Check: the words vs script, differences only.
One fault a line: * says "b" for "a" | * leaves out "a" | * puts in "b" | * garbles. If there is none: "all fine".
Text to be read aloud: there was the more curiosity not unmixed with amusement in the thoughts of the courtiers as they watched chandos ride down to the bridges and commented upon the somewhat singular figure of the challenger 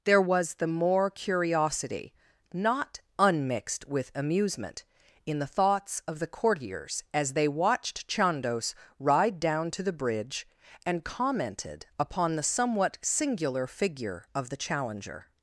* says "bridge" for "bridges"